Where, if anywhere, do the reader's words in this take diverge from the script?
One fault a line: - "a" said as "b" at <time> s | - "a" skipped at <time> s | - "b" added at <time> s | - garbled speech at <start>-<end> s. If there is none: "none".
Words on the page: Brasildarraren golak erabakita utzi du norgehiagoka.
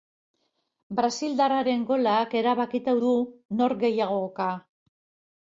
- "utzi" skipped at 3.0 s